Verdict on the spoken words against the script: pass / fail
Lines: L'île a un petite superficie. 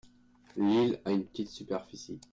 fail